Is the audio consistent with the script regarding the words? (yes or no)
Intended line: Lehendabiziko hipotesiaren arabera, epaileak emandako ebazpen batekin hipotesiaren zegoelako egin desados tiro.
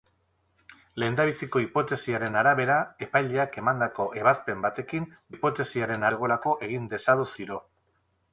yes